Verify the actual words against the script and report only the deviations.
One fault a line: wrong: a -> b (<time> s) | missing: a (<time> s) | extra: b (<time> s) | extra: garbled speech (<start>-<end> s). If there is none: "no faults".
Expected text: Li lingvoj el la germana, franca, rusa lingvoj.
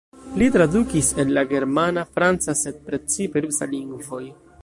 wrong: lingvoj -> tradukis (0.5 s)
extra: sed precipe (2.6 s)